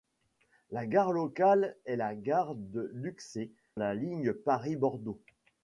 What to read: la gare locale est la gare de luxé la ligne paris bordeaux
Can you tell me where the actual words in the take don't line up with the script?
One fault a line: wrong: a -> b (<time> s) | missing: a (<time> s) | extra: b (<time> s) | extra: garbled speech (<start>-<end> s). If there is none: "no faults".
no faults